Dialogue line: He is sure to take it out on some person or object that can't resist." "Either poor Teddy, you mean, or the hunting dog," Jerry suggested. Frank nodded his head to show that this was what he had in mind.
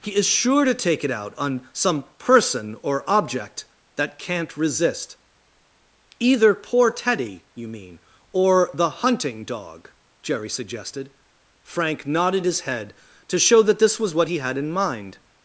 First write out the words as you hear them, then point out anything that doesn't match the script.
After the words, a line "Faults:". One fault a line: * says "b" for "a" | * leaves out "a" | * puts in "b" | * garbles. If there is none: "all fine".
He is sure to take it out on some person or object that can't resist." "Either poor Teddy, you mean, or the hunting dog," Jerry suggested. Frank nodded his head to show that this was what he had in mind.
Faults:
all fine